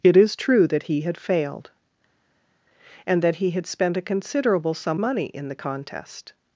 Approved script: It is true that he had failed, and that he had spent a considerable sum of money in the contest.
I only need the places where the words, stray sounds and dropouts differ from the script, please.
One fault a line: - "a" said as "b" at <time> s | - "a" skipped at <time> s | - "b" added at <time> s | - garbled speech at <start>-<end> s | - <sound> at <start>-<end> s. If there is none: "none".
- "of" skipped at 5.0 s